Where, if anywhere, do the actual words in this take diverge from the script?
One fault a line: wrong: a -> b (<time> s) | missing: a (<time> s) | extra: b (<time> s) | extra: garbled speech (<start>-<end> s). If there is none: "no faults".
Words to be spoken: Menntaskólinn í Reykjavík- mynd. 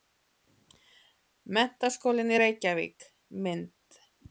no faults